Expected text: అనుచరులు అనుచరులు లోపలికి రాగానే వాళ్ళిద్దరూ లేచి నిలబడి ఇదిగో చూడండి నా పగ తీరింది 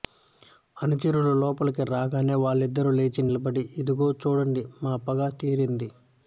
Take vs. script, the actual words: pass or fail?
fail